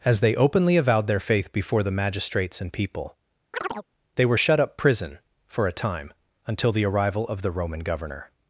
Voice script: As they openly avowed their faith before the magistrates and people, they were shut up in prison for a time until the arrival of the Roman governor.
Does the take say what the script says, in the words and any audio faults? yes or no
no